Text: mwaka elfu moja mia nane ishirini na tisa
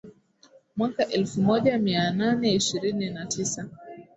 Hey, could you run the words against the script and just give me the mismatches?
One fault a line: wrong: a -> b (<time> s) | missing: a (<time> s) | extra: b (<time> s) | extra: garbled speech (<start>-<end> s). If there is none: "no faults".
no faults